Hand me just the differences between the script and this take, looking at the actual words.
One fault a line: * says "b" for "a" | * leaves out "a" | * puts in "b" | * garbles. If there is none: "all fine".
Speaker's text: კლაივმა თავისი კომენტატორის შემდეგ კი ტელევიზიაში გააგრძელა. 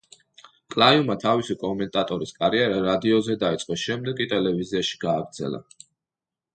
* puts in "კარიერა რადიოზე დაიწყო"